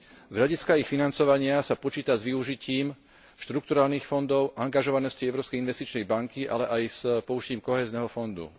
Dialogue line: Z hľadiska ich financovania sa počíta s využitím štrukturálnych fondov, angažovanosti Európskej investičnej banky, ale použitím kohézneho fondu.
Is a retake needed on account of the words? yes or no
yes